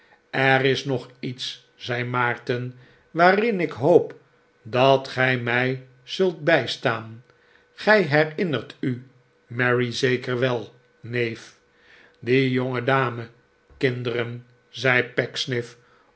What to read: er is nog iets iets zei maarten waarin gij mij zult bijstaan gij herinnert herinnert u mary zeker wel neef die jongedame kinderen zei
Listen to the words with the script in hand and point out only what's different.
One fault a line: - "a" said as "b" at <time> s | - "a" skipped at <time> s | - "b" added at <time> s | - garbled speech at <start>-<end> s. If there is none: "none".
- "iets" skipped at 1.6 s
- "ik hoop dat" added at 3.6 s
- "herinnert" skipped at 8.8 s